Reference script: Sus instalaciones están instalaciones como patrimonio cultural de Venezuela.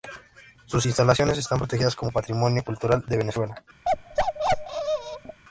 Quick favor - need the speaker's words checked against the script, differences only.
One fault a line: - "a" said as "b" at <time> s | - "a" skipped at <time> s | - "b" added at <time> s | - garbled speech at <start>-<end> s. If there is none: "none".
- "instalaciones" said as "protegidas" at 1.6 s